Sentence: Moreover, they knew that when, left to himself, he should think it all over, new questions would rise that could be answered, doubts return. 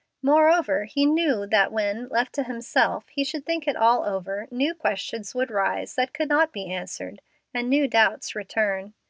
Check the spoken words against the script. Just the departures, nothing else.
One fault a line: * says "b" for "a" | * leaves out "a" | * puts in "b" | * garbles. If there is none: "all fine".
* says "he" for "they"
* puts in "not"
* puts in "and new"